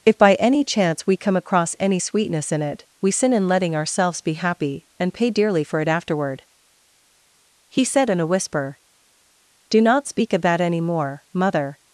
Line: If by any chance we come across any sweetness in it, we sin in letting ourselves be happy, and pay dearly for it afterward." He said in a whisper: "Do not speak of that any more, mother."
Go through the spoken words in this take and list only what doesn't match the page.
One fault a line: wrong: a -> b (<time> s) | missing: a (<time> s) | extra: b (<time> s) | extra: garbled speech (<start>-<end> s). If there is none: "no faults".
no faults